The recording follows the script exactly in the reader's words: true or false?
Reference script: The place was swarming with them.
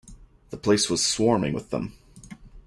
true